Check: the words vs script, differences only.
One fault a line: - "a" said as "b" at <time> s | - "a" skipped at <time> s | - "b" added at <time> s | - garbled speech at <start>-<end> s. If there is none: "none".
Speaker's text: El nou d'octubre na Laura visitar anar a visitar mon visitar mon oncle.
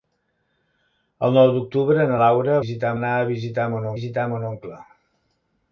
none